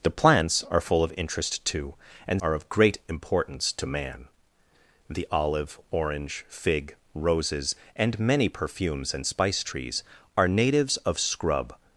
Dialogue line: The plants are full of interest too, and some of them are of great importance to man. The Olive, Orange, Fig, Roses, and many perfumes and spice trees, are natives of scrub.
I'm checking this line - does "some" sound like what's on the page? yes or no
no